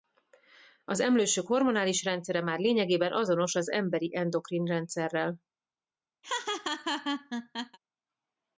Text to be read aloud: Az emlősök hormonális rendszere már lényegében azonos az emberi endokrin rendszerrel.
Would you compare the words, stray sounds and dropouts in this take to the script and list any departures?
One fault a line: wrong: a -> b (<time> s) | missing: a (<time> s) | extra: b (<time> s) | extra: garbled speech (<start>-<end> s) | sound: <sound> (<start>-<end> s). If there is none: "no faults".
sound: laugh (6.2-7.8 s)